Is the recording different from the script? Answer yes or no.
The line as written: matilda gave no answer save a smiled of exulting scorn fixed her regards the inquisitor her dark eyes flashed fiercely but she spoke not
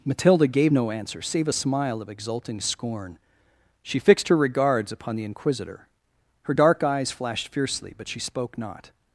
yes